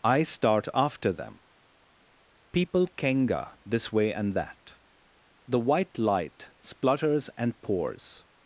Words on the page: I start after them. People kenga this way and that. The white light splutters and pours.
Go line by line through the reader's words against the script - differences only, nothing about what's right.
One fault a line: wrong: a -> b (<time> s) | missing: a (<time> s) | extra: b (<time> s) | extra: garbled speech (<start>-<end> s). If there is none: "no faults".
no faults